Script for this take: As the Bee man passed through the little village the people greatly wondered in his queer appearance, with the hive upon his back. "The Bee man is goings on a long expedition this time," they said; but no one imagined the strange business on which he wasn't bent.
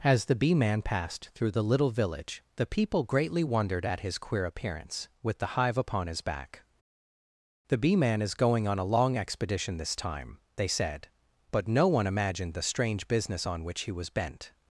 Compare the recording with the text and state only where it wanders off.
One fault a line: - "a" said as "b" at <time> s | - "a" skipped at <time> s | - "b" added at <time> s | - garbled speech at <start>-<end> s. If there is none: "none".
- "in" said as "at" at 3.9 s
- "goings" said as "going" at 8.3 s
- "wasn't" said as "was" at 13.9 s